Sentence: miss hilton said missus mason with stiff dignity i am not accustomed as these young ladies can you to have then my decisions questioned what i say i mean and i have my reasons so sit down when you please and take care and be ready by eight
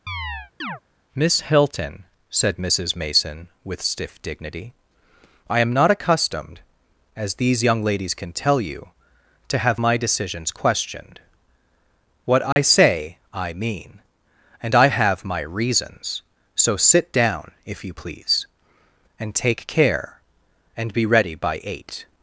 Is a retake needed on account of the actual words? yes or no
yes